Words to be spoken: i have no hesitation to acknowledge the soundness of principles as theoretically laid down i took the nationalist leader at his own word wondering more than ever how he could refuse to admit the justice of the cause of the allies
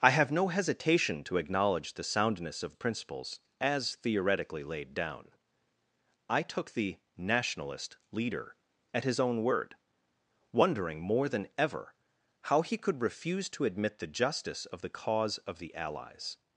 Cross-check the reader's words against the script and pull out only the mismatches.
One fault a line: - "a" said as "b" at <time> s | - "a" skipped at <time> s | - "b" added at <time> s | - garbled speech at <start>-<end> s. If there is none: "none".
none